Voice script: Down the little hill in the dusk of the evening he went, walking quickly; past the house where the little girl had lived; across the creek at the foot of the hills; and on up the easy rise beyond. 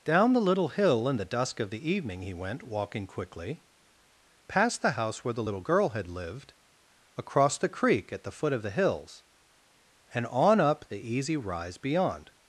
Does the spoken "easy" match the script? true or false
true